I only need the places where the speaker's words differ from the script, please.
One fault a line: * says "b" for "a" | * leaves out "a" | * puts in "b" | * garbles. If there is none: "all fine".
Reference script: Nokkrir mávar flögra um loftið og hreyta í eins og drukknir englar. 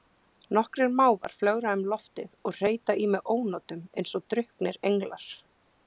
* puts in "mig ónotum"